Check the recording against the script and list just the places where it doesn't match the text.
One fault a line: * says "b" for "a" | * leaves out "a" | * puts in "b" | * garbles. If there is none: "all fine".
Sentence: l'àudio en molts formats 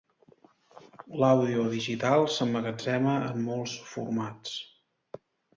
* puts in "digital s'emmagatzema"